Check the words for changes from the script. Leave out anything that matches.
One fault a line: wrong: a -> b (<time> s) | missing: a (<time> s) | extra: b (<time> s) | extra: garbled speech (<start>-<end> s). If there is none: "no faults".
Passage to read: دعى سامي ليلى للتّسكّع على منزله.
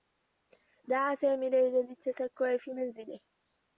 wrong: على -> في (2.6 s)